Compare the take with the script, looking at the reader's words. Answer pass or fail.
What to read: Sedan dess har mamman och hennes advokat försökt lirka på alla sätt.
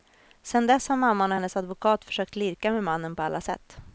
fail